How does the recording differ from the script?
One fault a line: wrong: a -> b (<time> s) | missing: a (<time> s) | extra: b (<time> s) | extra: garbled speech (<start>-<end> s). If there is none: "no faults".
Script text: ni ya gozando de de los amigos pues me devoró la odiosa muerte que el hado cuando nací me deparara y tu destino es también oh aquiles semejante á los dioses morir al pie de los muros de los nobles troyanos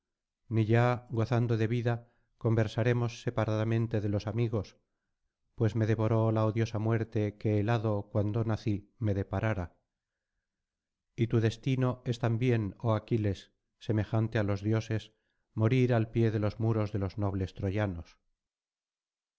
extra: vida conversaremos separadamente (1.7 s)